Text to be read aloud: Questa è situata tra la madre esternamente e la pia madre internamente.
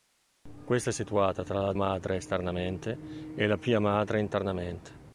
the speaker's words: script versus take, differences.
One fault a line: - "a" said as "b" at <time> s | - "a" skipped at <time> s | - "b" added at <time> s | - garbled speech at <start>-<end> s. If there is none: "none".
none